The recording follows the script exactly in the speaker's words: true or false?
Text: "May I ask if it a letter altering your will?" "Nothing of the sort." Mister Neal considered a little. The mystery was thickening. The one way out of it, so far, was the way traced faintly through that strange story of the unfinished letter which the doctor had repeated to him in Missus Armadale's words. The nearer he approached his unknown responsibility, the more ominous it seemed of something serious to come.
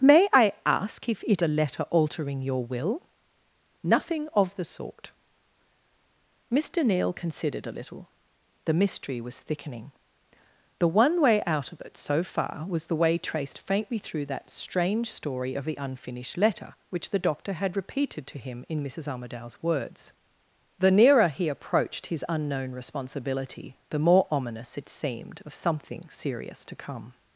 true